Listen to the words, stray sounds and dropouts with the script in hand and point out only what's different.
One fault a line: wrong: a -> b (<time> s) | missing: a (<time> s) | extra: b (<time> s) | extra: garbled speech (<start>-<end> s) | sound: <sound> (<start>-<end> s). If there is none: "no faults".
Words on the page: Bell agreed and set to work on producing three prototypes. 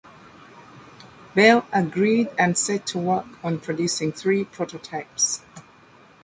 no faults